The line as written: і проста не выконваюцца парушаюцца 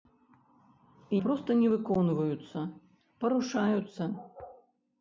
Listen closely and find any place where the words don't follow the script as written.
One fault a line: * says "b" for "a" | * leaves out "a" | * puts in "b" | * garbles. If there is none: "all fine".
all fine